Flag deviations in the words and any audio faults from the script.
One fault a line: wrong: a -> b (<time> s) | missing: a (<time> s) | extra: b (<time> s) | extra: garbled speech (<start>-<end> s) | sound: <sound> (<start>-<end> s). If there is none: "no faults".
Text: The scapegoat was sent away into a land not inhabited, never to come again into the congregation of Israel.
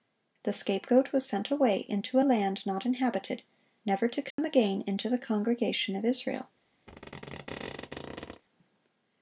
sound: dropout (4.3-4.4 s)
sound: squeak (6.9-8.4 s)